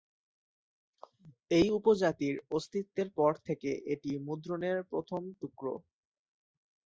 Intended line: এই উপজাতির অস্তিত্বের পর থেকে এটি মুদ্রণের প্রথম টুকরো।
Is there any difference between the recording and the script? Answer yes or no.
no